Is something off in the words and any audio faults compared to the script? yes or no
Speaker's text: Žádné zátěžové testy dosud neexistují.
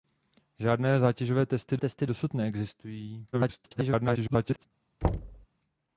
yes